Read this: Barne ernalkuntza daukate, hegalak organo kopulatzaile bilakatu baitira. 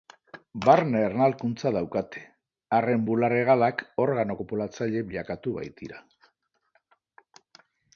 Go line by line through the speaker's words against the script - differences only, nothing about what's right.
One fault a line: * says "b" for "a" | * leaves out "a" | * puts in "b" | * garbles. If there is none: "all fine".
* puts in "arren bular"